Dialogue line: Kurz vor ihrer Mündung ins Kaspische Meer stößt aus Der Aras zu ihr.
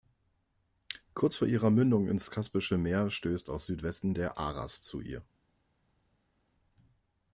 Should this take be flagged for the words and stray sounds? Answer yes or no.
yes